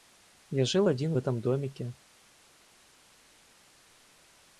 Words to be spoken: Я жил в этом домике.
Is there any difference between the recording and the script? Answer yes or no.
yes